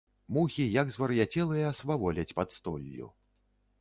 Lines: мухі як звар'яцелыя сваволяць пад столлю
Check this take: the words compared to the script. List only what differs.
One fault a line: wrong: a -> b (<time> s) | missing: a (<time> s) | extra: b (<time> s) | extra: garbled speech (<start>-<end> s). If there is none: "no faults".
no faults